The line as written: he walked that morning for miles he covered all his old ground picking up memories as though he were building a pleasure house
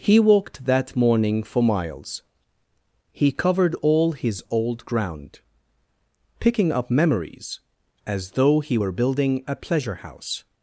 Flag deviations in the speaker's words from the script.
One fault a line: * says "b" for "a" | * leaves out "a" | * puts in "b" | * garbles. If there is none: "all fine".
all fine